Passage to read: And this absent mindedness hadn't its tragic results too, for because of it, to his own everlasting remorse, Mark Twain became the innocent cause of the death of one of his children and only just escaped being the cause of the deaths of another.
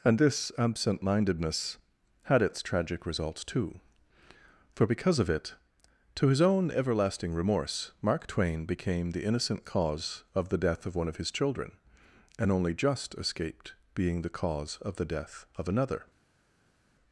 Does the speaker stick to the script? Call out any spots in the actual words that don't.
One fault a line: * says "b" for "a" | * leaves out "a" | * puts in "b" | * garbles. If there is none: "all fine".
* says "had" for "hadn't"
* says "death" for "deaths"